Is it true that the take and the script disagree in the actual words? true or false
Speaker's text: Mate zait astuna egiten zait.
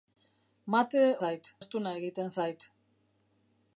false